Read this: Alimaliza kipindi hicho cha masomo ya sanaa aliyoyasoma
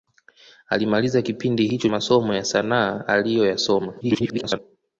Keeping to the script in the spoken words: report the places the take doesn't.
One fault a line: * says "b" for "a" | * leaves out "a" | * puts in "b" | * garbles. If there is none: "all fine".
* leaves out "cha"
* garbles